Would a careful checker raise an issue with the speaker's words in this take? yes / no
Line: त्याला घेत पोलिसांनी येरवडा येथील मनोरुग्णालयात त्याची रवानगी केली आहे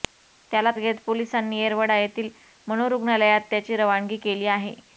no